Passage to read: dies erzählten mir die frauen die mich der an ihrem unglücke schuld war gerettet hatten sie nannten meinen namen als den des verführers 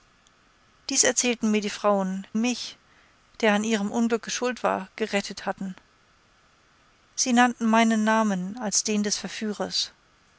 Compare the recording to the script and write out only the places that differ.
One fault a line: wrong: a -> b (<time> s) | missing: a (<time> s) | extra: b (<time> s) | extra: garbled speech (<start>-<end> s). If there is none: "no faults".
missing: die (2.2 s)